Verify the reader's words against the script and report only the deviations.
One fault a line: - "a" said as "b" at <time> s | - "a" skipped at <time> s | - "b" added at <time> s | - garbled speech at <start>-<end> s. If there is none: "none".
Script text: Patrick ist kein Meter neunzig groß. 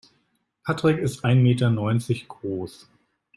- "kein" said as "ein" at 1.3 s